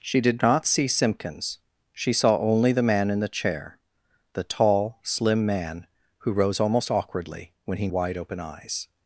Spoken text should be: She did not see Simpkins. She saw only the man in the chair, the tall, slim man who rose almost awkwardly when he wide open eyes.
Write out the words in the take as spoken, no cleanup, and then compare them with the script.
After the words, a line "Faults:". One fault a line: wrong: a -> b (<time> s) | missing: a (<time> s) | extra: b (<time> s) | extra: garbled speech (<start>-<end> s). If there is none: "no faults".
She did not see Simpkins. She saw only the man in the chair, the tall, slim man who rose almost awkwardly when he wide open eyes.
Faults:
no faults